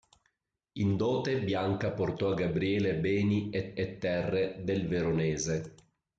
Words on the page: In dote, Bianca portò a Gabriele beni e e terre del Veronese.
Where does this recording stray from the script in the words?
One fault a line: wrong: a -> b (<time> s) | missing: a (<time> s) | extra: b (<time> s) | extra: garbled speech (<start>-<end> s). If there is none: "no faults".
no faults